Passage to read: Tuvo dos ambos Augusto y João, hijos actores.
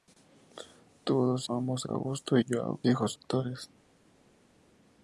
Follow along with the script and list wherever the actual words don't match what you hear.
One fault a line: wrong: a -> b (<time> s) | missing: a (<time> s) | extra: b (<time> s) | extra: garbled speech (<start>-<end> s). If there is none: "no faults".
no faults